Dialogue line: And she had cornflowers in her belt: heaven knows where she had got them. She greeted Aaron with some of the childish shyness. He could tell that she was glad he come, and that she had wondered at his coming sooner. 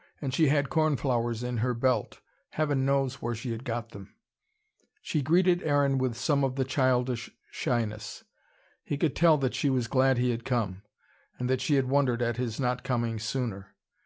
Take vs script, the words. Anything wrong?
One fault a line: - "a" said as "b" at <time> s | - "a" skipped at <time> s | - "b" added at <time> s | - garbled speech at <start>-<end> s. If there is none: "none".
- "had" added at 10.3 s
- "not" added at 12.6 s